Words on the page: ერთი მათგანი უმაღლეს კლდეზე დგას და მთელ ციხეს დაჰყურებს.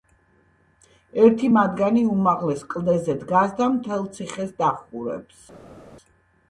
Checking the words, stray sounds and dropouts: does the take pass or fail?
pass